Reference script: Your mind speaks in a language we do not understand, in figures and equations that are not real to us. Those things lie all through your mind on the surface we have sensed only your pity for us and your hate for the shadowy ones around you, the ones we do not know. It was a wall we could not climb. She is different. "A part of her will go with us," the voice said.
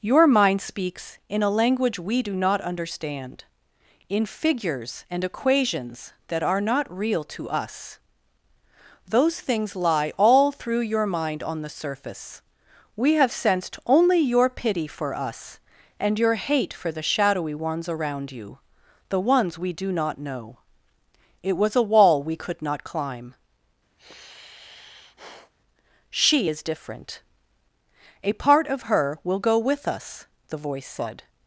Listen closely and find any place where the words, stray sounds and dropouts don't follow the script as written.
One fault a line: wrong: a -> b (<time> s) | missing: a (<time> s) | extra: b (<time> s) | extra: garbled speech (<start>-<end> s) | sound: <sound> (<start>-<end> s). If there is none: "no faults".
sound: sigh (24.0-25.5 s)